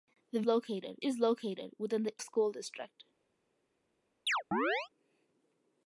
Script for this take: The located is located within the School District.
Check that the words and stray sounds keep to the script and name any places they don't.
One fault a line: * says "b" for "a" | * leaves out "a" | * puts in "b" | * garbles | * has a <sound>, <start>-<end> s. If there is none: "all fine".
* has a chirp, 4.3-4.9 s